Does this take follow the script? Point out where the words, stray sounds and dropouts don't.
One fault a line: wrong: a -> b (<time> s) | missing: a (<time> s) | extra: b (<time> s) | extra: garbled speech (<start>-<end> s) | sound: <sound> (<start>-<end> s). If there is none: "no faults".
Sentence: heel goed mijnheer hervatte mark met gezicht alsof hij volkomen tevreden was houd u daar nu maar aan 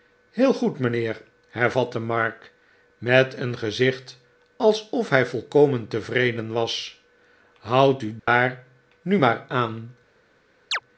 extra: een (3.3 s)
sound: dropout (8.2-8.3 s)
sound: chirp (10.7-10.8 s)